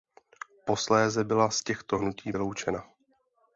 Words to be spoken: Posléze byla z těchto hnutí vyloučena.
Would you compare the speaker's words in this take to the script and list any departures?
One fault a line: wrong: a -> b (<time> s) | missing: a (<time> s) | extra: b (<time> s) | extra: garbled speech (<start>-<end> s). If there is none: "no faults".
no faults